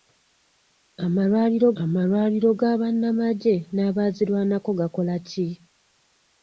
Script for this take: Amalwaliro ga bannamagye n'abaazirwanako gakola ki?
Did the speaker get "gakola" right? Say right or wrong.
right